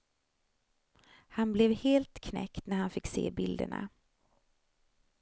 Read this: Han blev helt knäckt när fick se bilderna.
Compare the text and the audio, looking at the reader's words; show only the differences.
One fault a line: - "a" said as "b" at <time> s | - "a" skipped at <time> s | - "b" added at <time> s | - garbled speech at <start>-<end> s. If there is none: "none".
- "han" added at 2.8 s